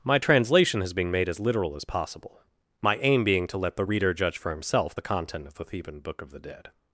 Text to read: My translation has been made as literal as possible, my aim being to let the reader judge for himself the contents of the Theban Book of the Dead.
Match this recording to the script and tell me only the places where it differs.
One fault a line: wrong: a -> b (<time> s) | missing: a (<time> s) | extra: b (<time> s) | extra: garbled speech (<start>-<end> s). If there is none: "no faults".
wrong: contents -> content (5.0 s)